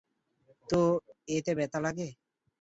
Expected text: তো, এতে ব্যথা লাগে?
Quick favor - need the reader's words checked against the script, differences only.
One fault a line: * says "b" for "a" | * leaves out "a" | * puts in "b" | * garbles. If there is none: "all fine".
all fine